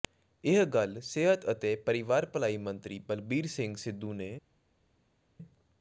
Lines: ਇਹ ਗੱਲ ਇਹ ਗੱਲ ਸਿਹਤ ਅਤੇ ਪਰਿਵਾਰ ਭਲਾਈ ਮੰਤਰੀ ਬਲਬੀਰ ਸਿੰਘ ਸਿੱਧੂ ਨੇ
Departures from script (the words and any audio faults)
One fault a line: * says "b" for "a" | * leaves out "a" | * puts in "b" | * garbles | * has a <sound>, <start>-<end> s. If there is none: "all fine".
* leaves out "ਇਹ ਗੱਲ"